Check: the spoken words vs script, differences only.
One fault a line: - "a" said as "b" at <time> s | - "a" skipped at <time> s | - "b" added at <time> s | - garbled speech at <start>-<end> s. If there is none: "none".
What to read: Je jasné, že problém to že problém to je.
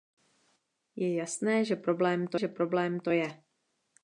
none